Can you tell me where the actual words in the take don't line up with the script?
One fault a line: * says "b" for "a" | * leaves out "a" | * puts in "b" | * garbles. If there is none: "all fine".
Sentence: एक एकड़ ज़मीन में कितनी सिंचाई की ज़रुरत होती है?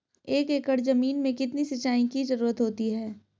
all fine